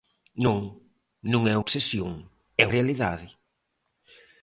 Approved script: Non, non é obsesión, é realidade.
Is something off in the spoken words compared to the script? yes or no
no